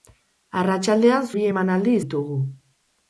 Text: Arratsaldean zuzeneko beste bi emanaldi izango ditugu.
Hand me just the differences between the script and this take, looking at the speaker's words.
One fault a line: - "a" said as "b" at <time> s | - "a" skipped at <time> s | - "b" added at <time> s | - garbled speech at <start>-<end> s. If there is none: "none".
- "zuzeneko beste" skipped at 1.3 s
- "izango" skipped at 2.0 s